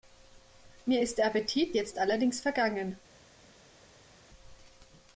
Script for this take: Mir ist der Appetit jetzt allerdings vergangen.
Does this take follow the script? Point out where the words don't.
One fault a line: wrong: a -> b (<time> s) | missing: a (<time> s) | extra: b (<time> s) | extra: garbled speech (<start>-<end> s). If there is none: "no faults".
no faults